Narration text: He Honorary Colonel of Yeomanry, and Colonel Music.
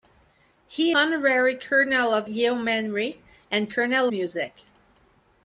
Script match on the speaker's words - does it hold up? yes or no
yes